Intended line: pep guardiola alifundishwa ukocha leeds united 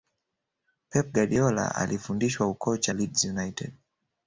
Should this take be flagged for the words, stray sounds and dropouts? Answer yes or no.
no